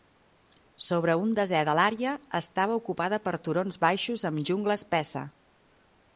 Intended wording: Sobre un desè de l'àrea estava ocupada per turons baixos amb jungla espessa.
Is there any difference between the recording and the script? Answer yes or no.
no